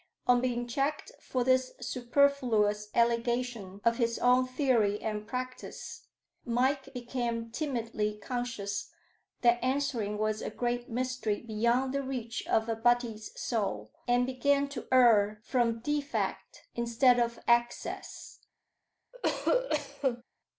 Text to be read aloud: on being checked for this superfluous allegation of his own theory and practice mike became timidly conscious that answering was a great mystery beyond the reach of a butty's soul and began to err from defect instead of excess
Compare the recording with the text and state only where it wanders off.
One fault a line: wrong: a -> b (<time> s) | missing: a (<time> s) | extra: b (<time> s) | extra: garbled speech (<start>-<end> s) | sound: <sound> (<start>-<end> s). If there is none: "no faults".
sound: cough (19.1-20.2 s)